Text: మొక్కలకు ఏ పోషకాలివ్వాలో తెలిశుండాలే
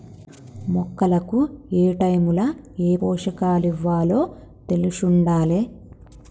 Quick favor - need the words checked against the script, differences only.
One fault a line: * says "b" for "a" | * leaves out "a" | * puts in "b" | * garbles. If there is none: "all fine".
* puts in "ఏటైముల"